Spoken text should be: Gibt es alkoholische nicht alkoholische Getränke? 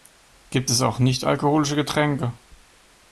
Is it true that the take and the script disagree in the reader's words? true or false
true